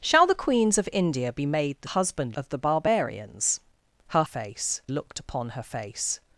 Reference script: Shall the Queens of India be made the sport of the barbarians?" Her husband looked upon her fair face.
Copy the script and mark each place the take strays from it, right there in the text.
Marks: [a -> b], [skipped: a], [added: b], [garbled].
Shall the Queens of India be made the [sport -> husband] of the barbarians?" Her [husband -> face] looked upon her [skipped: fair] face.